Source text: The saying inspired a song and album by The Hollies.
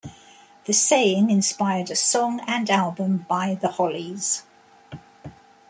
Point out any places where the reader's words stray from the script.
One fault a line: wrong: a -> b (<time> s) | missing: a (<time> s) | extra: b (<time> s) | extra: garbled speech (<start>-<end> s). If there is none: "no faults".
no faults